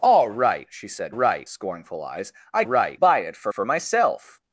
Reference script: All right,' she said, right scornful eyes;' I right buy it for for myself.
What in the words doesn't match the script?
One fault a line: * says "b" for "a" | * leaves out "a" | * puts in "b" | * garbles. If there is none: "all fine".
all fine